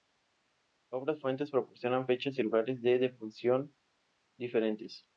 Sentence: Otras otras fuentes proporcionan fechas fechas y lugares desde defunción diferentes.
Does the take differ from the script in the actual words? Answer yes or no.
yes